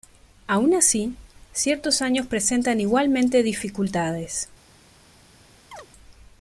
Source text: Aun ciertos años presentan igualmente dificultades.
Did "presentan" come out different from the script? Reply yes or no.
no